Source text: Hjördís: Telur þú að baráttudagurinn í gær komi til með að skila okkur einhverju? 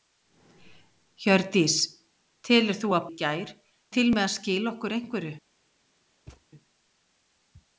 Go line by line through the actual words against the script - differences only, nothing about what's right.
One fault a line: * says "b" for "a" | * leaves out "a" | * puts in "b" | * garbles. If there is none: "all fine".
* leaves out "baráttudagurinn"
* leaves out "komi"